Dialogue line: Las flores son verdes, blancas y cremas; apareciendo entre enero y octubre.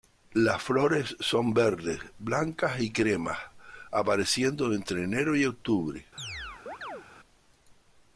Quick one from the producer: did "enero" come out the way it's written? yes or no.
yes